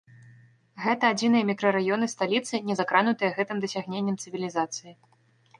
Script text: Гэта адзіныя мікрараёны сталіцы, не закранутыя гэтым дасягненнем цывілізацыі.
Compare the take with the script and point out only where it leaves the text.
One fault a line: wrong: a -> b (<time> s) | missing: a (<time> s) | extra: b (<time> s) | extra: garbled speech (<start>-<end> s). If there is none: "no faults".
no faults